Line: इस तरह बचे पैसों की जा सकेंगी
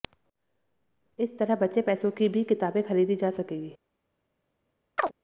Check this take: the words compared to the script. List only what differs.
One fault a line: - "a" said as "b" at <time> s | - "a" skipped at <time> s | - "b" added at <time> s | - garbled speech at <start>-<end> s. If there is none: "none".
- "भी किताबें खरीदी" added at 2.3 s